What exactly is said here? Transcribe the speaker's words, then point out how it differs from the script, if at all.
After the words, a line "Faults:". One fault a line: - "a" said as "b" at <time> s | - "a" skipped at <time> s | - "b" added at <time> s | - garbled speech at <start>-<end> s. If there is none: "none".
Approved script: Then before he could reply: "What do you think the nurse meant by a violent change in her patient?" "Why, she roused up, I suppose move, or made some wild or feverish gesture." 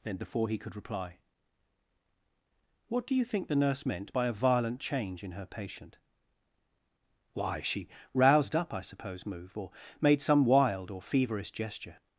Then before he could reply: "What do you think the nurse meant by a violent change in her patient?" "Why, she roused up, I suppose move, or made some wild or feverish gesture."
Faults:
none